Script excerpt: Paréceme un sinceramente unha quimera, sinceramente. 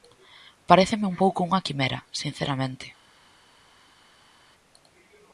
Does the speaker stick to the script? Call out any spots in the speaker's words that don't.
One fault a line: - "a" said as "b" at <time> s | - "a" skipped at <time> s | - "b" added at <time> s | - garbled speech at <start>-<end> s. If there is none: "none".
- "sinceramente" said as "pouco" at 1.2 s